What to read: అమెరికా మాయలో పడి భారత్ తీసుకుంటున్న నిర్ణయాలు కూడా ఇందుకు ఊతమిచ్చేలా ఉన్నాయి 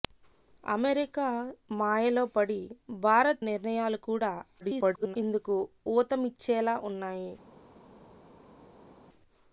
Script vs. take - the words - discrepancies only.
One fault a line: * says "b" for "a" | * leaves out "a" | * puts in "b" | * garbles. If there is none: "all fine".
* leaves out "తీసుకుంటున్న"
* garbles